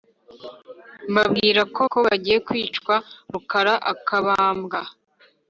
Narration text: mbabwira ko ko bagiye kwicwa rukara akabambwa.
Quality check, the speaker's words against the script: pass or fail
pass